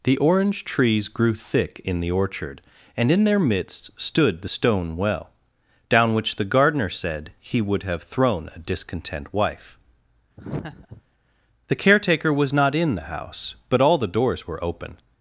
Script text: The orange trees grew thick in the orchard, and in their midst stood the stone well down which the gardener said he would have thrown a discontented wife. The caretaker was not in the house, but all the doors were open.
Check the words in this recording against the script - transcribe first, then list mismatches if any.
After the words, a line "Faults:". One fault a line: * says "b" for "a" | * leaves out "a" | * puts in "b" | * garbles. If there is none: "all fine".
The orange trees grew thick in the orchard, and in their midst stood the stone well down which the gardener said he would have thrown a discontent wife. The caretaker was not in the house, but all the doors were open.
Faults:
* says "discontent" for "discontented"